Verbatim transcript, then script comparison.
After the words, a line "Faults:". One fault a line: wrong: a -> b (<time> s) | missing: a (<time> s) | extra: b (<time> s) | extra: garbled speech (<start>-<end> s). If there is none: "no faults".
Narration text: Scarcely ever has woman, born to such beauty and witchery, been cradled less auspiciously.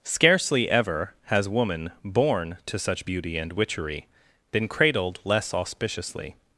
Scarcely ever has woman, born to such beauty and witchery, been cradled less auspiciously.
Faults:
no faults